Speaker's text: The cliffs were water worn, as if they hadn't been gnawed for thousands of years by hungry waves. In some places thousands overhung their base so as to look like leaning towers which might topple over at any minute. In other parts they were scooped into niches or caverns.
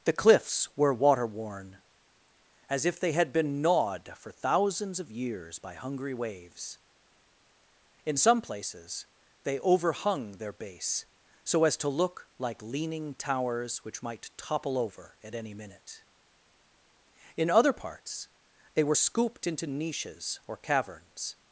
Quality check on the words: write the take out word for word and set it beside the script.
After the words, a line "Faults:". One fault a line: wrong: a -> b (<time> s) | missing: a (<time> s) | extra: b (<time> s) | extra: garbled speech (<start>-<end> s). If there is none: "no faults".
The cliffs were water worn, as if they had been gnawed for thousands of years by hungry waves. In some places they overhung their base so as to look like leaning towers which might topple over at any minute. In other parts they were scooped into niches or caverns.
Faults:
wrong: hadn't -> had (3.1 s)
wrong: thousands -> they (9.4 s)